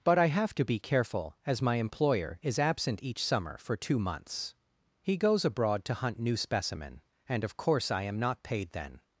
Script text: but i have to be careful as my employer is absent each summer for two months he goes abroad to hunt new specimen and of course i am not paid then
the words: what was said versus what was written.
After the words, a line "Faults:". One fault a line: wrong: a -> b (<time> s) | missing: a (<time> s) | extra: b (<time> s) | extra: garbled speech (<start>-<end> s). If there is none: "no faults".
but i have to be careful as my employer is absent each summer for two months he goes abroad to hunt new specimen and of course i am not paid then
Faults:
no faults